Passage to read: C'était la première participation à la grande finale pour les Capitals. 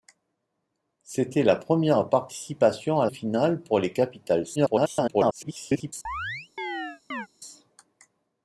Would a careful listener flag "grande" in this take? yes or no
yes